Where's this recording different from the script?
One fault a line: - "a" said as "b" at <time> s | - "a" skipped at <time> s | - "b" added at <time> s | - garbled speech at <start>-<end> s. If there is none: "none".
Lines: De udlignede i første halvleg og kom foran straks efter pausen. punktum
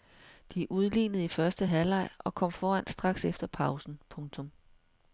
none